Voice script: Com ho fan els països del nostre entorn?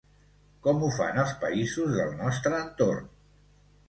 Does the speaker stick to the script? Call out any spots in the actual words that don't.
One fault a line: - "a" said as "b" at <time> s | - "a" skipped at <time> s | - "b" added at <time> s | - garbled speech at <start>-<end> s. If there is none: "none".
none